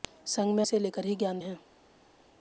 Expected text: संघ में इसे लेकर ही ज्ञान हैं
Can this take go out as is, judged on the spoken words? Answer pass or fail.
pass